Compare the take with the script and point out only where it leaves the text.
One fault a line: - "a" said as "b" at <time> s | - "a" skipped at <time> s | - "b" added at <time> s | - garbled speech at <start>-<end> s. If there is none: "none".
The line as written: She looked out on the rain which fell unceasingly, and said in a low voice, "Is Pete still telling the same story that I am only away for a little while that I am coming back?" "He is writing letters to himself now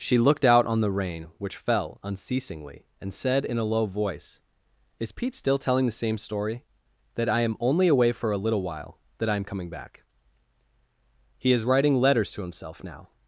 none